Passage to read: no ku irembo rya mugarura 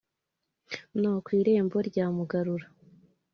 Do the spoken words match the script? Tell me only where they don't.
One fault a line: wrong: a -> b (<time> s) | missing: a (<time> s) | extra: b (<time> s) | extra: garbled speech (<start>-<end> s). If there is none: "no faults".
no faults